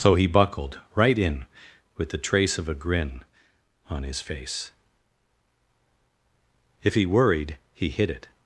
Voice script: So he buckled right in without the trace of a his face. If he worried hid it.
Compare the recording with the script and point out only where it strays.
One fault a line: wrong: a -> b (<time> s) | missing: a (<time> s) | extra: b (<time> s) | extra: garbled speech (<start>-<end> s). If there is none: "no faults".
wrong: without -> with (1.9 s)
extra: grin On (2.7 s)
extra: he (7.7 s)